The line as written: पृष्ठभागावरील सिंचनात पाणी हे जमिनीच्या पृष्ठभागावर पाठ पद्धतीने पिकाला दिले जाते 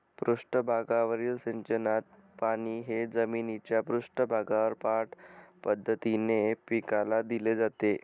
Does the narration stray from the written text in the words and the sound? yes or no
no